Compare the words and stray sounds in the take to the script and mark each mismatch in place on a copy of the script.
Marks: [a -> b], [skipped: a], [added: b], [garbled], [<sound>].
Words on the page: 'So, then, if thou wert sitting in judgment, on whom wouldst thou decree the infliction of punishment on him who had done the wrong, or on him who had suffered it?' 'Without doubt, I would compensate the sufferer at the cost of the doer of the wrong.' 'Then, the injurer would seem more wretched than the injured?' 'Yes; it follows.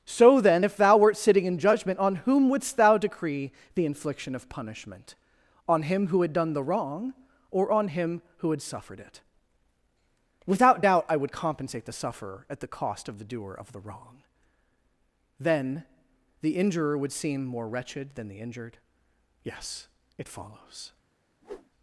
'So, then, if thou wert sitting in judgment, on whom wouldst thou decree the infliction of punishment on him who had done the wrong, or on him who had suffered it?' 'Without doubt, I would compensate the sufferer at the cost of the doer of the wrong.' 'Then, the injurer would seem more wretched than the injured?' 'Yes; it follows. [whoosh]